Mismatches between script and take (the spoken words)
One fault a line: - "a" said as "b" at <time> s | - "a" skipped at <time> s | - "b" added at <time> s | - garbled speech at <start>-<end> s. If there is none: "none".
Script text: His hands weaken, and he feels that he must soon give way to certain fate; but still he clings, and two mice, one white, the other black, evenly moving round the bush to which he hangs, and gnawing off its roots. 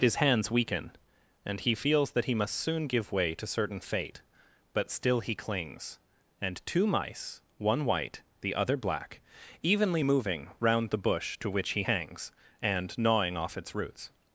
none